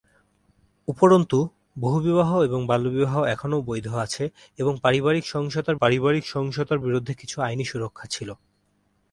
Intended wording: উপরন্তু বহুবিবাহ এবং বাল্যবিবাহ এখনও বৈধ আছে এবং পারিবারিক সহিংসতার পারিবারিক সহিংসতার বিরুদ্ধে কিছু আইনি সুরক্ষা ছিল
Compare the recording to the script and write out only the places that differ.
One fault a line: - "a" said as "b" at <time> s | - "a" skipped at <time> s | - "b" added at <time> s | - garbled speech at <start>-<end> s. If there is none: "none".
none